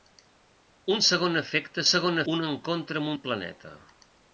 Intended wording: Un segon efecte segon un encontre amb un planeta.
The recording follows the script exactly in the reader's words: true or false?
true